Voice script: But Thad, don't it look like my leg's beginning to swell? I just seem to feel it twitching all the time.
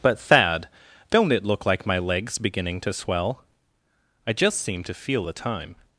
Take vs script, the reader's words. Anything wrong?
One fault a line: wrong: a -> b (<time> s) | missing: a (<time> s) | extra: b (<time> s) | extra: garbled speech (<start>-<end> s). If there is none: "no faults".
missing: it twitching all (5.3 s)